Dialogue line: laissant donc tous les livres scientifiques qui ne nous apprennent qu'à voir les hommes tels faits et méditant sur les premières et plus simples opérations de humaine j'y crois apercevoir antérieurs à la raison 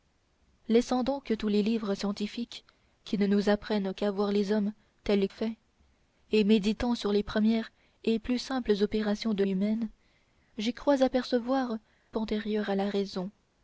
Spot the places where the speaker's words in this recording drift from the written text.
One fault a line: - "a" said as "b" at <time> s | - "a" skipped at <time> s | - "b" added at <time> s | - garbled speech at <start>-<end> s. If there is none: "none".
none